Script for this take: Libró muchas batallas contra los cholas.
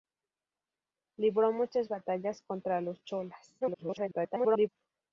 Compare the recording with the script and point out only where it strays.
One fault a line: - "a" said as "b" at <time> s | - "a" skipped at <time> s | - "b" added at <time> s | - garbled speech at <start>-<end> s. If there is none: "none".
- garbled speech at 3.6-4.7 s